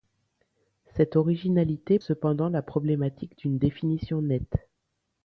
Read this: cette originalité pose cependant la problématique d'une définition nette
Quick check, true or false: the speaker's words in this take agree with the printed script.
false